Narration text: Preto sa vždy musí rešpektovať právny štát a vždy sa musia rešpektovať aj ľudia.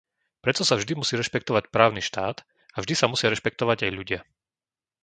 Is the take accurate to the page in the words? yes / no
yes